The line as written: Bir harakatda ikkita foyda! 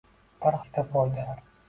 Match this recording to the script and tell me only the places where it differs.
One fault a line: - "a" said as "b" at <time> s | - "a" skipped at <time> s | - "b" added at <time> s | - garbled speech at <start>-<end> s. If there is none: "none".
- "harakatda" skipped at 0.6 s